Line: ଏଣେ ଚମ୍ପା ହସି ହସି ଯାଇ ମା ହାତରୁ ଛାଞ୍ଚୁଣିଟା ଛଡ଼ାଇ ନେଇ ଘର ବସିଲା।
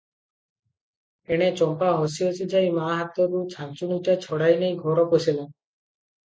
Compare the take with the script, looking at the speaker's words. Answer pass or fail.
pass